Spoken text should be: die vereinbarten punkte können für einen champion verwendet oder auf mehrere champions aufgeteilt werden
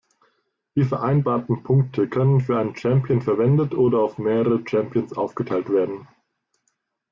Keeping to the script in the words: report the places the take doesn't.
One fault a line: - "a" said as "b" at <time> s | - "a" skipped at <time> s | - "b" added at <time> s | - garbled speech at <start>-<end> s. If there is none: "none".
none